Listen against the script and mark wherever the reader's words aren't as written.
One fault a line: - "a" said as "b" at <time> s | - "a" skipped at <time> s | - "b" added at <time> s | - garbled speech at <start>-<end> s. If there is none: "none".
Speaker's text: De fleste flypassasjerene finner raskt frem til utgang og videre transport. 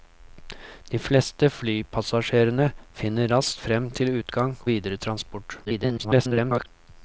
- "og" skipped at 4.6 s
- garbled speech at 5.6-6.7 s